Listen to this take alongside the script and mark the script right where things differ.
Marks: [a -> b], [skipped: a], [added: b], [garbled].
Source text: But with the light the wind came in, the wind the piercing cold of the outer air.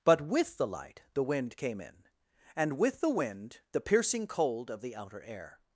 But with the light the wind came in, [added: and with] the wind the piercing cold of the outer air.